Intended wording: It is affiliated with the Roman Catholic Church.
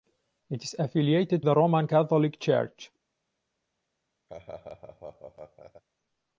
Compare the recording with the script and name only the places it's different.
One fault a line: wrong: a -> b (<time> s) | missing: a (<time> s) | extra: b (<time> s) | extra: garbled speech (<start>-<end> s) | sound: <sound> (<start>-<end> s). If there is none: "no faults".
missing: with (1.4 s)
sound: laugh (4.3-5.8 s)